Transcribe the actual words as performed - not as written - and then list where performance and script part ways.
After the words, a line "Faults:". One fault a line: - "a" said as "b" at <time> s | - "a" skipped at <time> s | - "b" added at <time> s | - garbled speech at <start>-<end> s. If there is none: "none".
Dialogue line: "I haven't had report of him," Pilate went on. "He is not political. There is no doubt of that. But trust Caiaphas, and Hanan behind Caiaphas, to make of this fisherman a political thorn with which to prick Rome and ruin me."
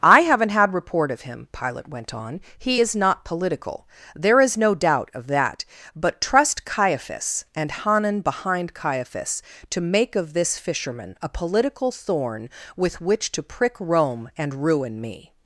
"I haven't had report of him," Pilate went on. "He is not political. There is no doubt of that. But trust Caiaphas, and Hanan behind Caiaphas, to make of this fisherman a political thorn with which to prick Rome and ruin me."
Faults:
none